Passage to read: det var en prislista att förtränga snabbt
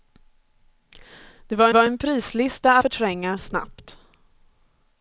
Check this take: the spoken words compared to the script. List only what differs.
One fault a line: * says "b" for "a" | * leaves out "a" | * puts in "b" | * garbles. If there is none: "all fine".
* puts in "var"
* leaves out "att"